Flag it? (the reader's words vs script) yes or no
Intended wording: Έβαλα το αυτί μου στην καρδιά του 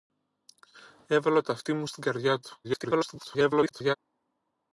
yes